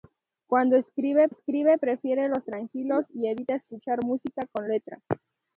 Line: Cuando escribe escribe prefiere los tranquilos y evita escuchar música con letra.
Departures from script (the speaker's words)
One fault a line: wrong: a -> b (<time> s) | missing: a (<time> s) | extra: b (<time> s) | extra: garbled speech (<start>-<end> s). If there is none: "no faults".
no faults